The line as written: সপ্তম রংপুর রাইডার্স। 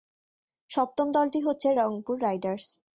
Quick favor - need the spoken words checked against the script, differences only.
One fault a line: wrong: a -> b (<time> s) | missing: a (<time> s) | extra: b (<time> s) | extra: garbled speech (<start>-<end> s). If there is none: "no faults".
extra: দলটি হচ্ছে (1.1 s)